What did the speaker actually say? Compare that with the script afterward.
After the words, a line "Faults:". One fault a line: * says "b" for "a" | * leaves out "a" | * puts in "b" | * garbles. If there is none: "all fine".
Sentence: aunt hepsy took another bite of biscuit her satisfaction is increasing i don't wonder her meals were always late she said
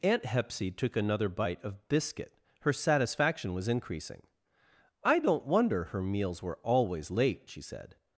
aunt hepsy took another bite of biscuit her satisfaction was increasing i don't wonder her meals were always late she said
Faults:
* says "was" for "is"